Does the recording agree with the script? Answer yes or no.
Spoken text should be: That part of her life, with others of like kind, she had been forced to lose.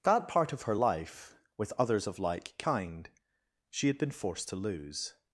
yes